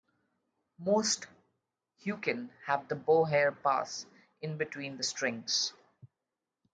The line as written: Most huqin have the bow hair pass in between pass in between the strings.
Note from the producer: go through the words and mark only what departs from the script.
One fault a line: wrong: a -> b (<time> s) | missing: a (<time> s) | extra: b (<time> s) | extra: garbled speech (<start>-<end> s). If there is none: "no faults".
missing: pass in between (5.0 s)